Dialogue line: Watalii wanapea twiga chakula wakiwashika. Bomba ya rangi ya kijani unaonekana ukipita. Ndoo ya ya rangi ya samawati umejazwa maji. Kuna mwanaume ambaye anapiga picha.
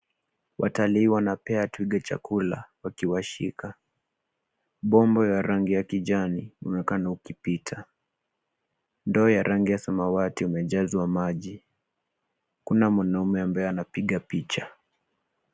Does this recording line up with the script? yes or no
no